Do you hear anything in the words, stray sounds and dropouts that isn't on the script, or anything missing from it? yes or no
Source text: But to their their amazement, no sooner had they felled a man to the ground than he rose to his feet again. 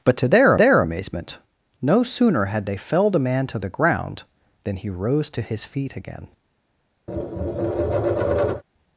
yes